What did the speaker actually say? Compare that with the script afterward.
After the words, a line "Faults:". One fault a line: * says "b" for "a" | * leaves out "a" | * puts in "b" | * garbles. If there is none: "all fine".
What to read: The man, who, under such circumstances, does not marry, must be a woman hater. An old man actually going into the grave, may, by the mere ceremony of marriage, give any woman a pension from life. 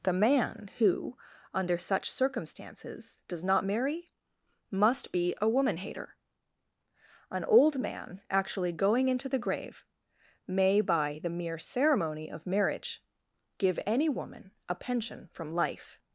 The man, who, under such circumstances, does not marry, must be a woman hater. An old man actually going into the grave, may, by the mere ceremony of marriage, give any woman a pension from life.
Faults:
all fine